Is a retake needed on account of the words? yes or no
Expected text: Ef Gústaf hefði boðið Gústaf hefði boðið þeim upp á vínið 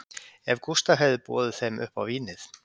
yes